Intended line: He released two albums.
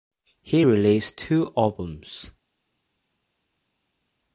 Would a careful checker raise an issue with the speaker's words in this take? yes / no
no